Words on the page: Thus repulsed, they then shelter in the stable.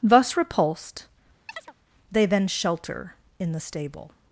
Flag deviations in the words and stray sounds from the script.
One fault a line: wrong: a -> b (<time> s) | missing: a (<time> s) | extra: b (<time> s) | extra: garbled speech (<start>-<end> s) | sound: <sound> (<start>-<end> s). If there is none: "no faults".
sound: chirp (1.5-1.7 s)